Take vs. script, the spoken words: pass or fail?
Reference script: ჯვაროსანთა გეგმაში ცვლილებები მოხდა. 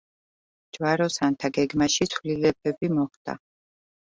pass